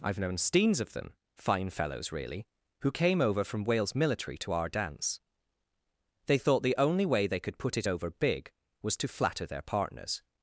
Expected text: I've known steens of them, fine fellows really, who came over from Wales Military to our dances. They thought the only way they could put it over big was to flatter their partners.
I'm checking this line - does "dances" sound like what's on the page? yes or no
no